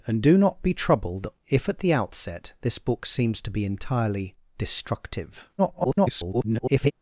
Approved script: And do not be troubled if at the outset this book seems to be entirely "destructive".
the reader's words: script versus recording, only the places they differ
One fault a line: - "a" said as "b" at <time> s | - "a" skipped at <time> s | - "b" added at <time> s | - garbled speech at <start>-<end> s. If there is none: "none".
- garbled speech at 5.6-6.9 s